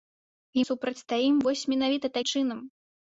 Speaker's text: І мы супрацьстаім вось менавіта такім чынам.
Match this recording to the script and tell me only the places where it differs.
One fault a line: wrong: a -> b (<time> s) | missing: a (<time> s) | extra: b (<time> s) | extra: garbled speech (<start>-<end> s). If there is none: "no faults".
missing: мы (0.6 s)
missing: такім (2.2 s)